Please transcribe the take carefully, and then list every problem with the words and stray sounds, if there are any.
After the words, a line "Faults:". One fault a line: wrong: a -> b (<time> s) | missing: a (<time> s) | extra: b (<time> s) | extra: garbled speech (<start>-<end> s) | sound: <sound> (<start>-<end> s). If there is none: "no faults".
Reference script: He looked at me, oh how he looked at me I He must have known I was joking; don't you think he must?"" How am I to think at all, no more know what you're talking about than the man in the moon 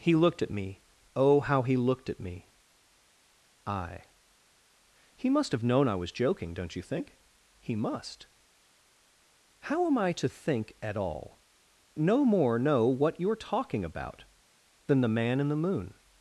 He looked at me, oh how he looked at me I He must have known I was joking; don't you think he must?"" How am I to think at all, no more know what you're talking about than the man in the moon
Faults:
no faults